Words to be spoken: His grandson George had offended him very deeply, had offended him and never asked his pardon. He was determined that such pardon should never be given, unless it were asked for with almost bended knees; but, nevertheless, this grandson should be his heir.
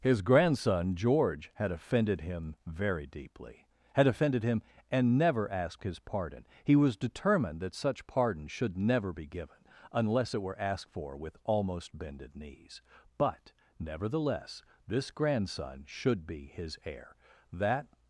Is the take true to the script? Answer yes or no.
no